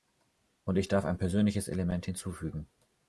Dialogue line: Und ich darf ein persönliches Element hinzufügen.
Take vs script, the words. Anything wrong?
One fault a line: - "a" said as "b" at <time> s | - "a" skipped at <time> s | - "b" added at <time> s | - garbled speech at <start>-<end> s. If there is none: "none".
none